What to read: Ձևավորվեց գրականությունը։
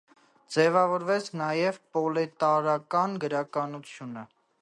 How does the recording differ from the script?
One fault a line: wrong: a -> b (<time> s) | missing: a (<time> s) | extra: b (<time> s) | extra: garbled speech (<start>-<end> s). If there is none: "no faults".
extra: նաև պրոլետարական (1.4 s)